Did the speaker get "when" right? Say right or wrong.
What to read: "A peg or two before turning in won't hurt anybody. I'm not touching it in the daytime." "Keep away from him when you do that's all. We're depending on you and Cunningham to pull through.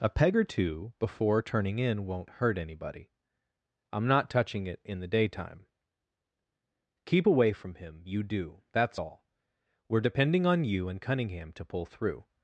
wrong